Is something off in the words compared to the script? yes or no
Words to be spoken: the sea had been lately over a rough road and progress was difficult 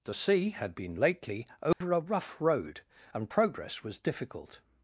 no